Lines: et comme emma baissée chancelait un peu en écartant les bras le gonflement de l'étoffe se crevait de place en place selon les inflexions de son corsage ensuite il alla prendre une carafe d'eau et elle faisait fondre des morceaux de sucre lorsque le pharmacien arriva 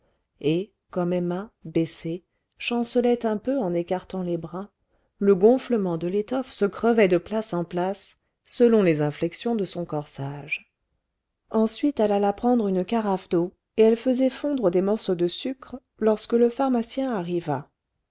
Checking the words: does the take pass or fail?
fail